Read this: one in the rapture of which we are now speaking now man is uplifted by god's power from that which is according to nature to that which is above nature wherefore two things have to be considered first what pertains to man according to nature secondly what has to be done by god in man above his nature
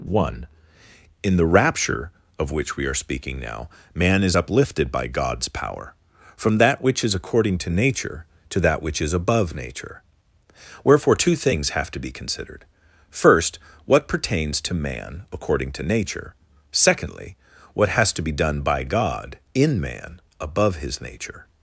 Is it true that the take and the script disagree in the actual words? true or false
true